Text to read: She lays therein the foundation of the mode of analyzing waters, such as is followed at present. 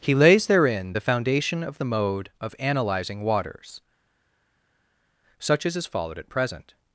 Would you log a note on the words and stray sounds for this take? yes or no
yes